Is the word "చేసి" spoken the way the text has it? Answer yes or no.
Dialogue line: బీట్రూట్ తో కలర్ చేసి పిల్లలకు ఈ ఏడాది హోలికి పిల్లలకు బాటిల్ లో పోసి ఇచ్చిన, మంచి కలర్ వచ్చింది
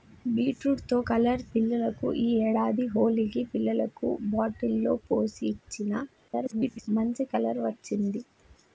no